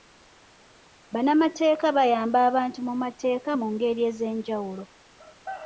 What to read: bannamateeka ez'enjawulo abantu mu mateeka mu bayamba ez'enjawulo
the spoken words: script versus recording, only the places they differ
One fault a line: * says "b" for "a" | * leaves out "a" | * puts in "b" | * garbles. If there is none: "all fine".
* says "bayamba" for "ez'enjawulo"
* says "ngeri" for "bayamba"